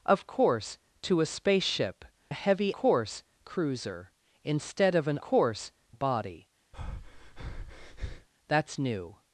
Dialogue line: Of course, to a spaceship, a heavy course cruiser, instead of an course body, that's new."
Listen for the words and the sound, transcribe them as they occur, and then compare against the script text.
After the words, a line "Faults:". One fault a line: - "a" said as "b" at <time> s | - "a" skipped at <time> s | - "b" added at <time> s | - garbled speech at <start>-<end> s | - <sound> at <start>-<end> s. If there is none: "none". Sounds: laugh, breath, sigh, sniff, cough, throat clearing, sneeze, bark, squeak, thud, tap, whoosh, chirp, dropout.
Of course, to a spaceship, a heavy course cruiser, instead of an course body, that's new."
Faults:
- breath at 6.7-8.3 s